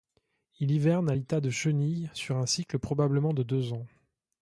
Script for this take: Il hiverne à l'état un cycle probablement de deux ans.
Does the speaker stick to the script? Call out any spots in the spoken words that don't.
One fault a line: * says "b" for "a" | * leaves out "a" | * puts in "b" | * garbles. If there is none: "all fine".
* puts in "de chenille sur"